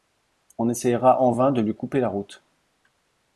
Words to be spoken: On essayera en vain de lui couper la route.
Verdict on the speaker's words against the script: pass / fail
pass